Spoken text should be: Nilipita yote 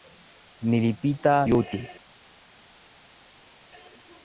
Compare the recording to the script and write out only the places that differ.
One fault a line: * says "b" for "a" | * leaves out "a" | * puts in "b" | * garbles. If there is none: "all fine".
all fine